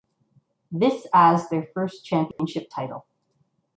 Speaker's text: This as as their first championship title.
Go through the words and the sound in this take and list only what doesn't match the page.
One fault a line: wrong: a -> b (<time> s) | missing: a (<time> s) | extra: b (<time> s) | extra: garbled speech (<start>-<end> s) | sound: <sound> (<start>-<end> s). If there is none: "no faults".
missing: as (1.5 s)
sound: dropout (2.3-2.4 s)